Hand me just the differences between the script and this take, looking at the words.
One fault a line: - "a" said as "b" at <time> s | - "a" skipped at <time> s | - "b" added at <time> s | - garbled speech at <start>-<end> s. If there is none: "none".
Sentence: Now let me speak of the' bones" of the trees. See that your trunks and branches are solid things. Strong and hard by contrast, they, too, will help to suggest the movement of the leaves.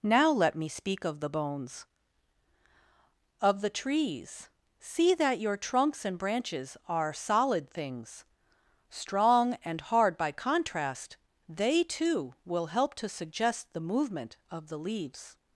none